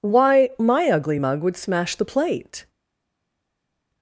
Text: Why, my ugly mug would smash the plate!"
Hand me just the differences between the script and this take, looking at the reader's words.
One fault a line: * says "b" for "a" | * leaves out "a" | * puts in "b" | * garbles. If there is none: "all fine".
all fine